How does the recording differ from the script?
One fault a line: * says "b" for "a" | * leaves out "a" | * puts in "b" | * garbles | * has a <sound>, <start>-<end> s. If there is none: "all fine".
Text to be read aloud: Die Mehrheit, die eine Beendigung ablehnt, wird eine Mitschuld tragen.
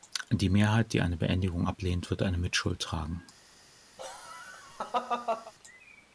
* has a laugh, 4.0-5.5 s